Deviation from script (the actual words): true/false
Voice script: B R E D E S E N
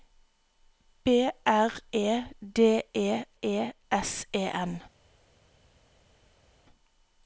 true